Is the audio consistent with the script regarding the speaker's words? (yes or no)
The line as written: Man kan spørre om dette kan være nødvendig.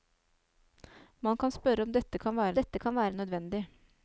no